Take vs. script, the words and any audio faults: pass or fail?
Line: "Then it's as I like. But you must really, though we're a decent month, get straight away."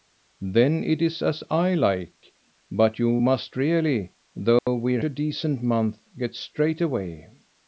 fail